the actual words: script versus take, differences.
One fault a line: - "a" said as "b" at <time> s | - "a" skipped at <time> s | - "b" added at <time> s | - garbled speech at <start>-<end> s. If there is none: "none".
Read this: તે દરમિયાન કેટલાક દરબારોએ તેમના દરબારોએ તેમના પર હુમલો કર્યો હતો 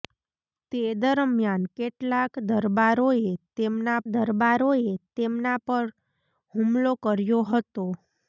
none